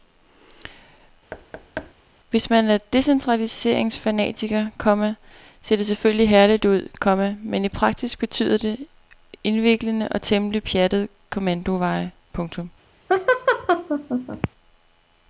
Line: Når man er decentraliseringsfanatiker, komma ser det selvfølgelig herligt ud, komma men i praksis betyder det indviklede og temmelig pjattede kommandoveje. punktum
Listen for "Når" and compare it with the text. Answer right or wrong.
wrong